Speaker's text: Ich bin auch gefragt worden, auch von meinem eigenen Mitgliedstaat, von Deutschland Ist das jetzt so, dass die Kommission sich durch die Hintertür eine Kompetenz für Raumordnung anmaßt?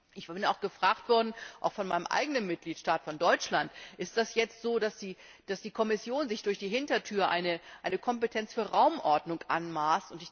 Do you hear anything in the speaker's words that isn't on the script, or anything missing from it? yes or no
no